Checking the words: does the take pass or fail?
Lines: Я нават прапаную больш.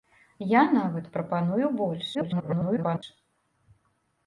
fail